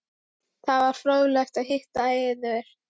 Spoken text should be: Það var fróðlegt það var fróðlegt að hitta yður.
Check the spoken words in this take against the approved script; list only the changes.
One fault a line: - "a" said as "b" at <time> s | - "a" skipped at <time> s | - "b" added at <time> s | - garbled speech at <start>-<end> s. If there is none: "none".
- "það var fróðlegt" skipped at 1.6 s